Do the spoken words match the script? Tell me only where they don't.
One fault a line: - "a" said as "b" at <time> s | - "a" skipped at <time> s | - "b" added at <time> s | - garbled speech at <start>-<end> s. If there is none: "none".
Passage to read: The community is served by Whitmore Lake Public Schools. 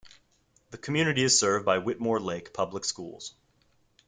none